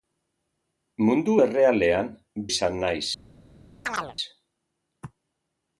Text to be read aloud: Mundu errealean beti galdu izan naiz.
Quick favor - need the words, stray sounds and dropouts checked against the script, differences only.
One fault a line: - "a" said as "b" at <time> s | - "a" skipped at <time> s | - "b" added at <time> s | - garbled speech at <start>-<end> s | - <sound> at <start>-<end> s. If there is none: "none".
- "beti galdu" skipped at 2.1 s
- chirp at 3.8-4.2 s